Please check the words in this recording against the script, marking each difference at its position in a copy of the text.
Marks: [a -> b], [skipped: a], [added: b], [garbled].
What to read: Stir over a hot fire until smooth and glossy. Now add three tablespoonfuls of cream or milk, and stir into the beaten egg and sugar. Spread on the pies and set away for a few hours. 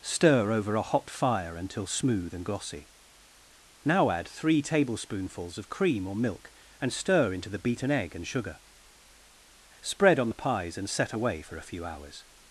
Stir over a hot fire until smooth and glossy. Now add three tablespoonfuls of cream or milk, and stir into the beaten egg and sugar. Spread on the pies and set away for a few hours.